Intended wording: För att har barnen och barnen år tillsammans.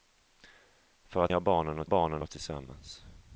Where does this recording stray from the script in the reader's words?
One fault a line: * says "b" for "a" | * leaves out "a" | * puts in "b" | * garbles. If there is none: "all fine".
all fine